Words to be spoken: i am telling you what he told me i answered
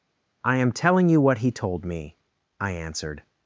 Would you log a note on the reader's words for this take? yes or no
no